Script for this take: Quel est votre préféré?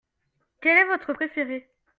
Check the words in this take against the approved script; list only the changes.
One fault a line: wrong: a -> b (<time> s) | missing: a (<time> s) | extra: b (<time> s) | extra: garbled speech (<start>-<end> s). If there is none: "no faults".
no faults